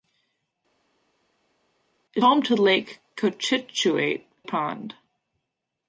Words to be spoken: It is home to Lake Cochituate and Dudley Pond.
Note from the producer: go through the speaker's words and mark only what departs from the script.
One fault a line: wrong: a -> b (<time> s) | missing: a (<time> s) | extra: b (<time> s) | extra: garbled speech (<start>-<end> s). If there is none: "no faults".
missing: is (2.2 s)
missing: and Dudley (4.3 s)